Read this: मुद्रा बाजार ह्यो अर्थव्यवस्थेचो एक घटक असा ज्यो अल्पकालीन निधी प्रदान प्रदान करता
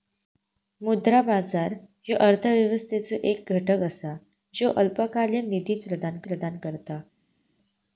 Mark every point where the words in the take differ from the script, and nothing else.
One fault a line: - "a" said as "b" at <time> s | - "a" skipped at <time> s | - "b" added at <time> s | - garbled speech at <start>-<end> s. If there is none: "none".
none